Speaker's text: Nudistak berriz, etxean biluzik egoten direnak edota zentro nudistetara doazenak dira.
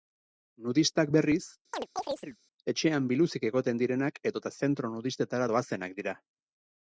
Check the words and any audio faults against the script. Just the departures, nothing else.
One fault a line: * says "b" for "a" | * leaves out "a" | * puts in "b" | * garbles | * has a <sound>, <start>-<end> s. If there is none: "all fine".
* has a chirp, 1.7-2.4 s